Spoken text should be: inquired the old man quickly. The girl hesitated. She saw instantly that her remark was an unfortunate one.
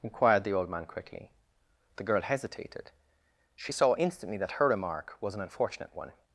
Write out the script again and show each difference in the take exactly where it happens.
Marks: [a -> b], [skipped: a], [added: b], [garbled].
inquired the old man quickly. The girl hesitated. She saw instantly that her remark was an unfortunate one.